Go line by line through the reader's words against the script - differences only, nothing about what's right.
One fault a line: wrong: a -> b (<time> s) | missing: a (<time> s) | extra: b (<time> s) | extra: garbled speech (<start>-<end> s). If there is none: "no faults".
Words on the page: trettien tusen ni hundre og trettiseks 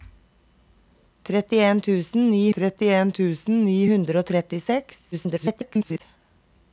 extra: trettien tusen ni (2.6 s)
extra: garbled speech (5.1-6.0 s)